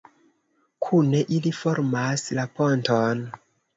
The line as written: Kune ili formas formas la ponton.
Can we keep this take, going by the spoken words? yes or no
no